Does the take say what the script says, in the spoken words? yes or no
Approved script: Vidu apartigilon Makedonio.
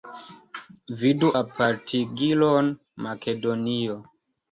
yes